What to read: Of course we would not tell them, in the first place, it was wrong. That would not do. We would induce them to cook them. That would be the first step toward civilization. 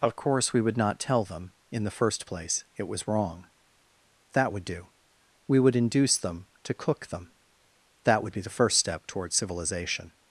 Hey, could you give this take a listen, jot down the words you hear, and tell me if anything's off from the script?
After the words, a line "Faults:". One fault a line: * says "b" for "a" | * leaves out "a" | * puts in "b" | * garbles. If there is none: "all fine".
Of course we would not tell them, in the first place, it was wrong. That would do. We would induce them to cook them. That would be the first step toward civilization.
Faults:
* leaves out "not"